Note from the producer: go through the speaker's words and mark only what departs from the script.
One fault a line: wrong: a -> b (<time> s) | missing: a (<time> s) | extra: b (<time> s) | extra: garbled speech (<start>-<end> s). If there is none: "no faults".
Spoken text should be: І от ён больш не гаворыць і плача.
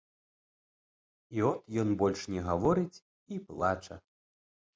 no faults